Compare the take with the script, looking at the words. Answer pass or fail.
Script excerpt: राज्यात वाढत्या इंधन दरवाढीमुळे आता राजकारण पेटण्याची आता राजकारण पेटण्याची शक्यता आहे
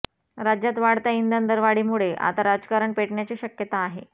fail